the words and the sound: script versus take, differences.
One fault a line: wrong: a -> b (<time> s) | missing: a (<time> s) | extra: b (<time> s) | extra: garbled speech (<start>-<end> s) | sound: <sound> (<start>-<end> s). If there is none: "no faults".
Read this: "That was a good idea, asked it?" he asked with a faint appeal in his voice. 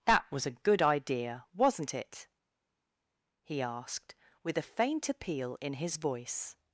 wrong: asked -> wasn't (1.5 s)